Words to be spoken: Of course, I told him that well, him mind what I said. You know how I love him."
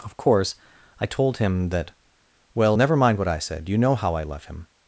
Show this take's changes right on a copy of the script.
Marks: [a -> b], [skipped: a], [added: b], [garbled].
Of course, I told him that well, [him -> never] mind what I said. You know how I love him."